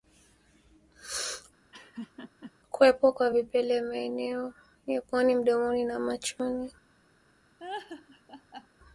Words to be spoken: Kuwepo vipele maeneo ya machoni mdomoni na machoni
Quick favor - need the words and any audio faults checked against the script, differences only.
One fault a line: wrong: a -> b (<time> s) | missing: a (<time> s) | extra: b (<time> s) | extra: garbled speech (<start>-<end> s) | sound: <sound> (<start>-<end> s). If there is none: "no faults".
sound: laugh (1.7-2.5 s)
extra: kwa (3.1 s)
wrong: machoni -> puani (5.0 s)
sound: laugh (7.6-8.7 s)